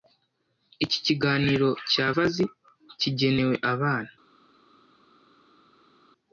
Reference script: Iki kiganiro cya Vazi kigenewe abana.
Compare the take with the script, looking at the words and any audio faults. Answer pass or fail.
pass